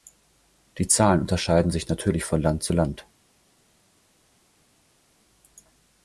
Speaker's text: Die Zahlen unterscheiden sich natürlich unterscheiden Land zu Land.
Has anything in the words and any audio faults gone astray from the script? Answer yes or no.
yes